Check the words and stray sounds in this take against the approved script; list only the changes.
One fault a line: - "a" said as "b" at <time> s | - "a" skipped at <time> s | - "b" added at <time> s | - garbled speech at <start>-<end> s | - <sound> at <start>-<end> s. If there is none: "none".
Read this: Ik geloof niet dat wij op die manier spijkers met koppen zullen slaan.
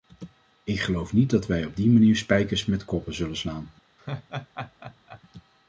- laugh at 4.0-5.2 s